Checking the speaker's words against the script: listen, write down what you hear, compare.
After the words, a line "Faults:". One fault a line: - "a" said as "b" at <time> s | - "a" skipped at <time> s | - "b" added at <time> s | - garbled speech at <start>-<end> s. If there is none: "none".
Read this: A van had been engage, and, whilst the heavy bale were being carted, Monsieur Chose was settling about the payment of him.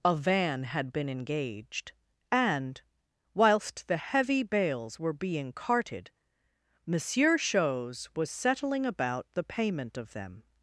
A van had been engaged, and, whilst the heavy bales were being carted, Monsieur Chose was settling about the payment of them.
Faults:
- "engage" said as "engaged" at 1.1 s
- "bale" said as "bales" at 4.4 s
- "him" said as "them" at 10.1 s